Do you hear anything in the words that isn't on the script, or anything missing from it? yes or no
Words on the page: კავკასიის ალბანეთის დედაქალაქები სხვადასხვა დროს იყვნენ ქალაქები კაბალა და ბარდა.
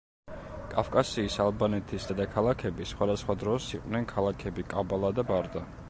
no